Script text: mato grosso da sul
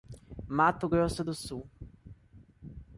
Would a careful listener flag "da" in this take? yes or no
yes